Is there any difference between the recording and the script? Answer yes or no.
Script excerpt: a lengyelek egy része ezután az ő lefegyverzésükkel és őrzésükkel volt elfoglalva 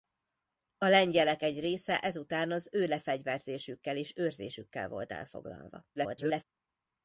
yes